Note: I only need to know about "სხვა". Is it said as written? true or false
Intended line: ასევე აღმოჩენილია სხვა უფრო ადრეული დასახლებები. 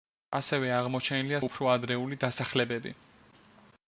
false